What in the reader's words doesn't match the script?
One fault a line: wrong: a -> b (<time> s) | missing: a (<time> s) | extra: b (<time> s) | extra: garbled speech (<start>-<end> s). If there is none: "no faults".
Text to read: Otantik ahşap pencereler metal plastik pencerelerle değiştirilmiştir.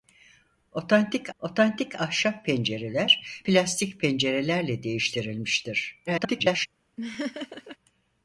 extra: otantik (1.4 s)
missing: metal (3.4 s)
extra: garbled speech (6.1-6.7 s)